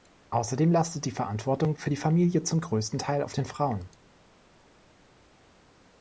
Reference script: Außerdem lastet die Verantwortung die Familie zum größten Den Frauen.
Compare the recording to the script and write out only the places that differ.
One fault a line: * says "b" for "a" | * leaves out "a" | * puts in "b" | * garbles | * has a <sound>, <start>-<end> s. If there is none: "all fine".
* puts in "für"
* puts in "Teil auf"